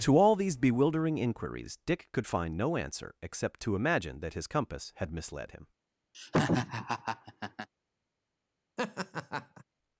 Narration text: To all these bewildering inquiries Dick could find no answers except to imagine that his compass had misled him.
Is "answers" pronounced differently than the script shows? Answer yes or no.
yes